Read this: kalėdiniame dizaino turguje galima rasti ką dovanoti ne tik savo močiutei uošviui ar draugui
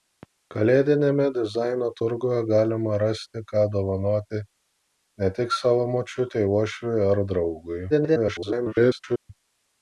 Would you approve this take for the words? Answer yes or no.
no